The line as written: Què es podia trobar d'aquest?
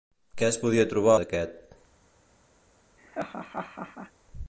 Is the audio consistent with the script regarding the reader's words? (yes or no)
yes